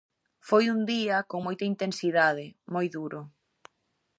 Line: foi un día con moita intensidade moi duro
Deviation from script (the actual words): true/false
false